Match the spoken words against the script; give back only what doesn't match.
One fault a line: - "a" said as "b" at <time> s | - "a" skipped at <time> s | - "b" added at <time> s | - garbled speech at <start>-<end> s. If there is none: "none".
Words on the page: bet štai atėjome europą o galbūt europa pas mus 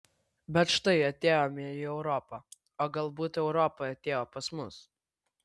- "į" added at 1.7 s
- "atėjo" added at 3.9 s